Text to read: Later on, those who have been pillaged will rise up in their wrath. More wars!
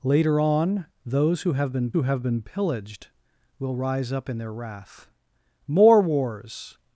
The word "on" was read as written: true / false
true